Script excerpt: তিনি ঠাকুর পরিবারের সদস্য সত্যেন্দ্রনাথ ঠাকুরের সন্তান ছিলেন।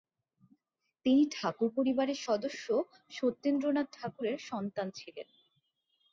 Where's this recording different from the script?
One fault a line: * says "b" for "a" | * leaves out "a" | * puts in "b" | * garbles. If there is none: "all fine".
all fine